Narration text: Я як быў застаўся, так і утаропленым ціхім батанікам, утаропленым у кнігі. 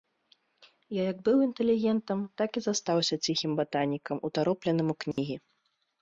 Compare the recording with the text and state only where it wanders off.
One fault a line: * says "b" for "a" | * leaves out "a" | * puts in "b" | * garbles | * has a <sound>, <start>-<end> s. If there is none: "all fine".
* says "інтэлігентам" for "застаўся"
* says "застаўся" for "утаропленым"
* has a dropout, 5.1-5.2 s